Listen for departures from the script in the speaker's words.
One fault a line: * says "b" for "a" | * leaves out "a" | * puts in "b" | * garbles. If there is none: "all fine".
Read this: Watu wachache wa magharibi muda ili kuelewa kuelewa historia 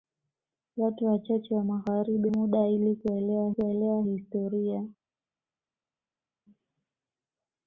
all fine